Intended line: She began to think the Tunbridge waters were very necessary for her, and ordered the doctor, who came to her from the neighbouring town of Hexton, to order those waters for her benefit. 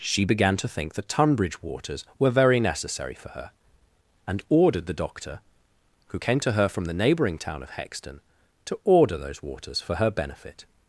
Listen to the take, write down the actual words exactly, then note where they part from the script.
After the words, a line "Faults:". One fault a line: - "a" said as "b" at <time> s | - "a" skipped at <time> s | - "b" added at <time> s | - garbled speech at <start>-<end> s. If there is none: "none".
She began to think the Tunbridge waters were very necessary for her, and ordered the doctor, who came to her from the neighbouring town of Hexton, to order those waters for her benefit.
Faults:
none